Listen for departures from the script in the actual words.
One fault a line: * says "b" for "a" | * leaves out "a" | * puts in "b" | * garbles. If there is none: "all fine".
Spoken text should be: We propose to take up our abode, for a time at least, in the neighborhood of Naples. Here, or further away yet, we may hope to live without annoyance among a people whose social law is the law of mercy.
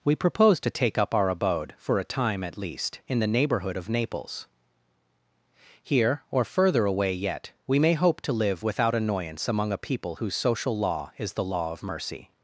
all fine